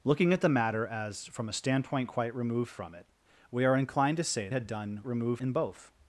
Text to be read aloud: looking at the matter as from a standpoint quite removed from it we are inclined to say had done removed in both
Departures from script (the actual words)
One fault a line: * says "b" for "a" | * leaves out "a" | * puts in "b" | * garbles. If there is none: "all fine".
all fine